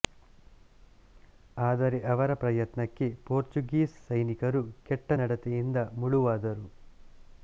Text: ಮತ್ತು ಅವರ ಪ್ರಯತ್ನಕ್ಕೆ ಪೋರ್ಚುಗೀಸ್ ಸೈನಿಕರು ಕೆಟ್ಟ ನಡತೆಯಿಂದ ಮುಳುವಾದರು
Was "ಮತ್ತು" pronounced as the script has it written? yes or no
no